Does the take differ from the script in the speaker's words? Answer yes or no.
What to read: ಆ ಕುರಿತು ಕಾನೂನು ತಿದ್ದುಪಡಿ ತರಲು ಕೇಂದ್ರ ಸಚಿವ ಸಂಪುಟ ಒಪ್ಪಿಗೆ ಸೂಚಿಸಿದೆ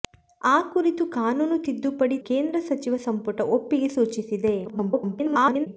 yes